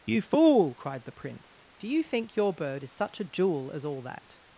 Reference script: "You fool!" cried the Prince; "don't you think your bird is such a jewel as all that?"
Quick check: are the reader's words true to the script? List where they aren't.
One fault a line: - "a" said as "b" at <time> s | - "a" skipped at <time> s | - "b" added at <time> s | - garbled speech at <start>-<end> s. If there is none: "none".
- "don't" said as "do" at 1.8 s